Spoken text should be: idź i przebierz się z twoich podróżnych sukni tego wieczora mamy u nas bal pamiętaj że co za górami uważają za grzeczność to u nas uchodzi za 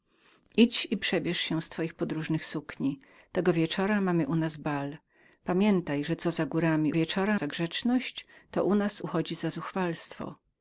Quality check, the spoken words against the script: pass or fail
fail